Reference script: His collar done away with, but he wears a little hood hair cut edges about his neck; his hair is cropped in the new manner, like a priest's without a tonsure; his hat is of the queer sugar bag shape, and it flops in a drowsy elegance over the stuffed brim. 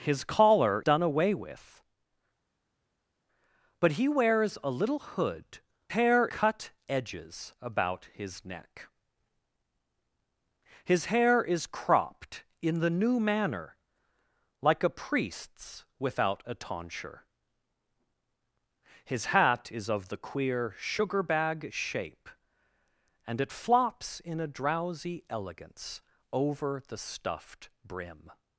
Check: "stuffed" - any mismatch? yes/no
no